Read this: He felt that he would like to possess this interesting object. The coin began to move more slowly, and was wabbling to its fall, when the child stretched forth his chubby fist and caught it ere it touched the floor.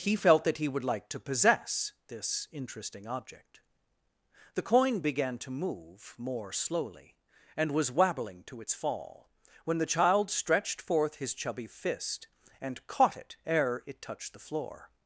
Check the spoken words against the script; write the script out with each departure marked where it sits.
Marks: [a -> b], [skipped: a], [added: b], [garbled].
He felt that he would like to possess this interesting object. The coin began to move more slowly, and was wabbling to its fall, when the child stretched forth his chubby fist and caught it ere it touched the floor.